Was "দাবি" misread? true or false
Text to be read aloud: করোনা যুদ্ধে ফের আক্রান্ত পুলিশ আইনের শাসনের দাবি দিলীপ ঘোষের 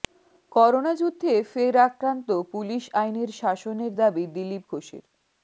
false